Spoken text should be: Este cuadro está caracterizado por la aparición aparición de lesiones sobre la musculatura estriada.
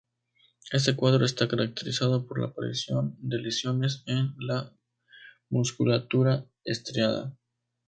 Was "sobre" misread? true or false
true